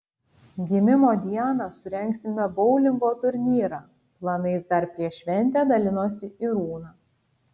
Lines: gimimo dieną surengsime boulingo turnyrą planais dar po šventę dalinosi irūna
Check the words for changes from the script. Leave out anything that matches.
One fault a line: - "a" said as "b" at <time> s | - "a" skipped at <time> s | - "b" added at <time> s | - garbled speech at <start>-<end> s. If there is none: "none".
- "po" said as "prieš" at 5.0 s